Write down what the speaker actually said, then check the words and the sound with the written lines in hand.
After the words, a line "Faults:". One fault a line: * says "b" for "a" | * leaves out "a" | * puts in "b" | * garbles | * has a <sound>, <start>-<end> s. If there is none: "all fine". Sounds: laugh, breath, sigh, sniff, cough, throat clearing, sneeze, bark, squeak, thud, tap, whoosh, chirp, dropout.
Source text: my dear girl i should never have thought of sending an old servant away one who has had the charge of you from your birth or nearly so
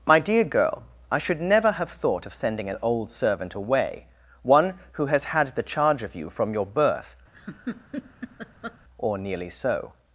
my dear girl i should never have thought of sending an old servant away one who has had the charge of you from your birth or nearly so
Faults:
* has a laugh, 7.3-8.8 s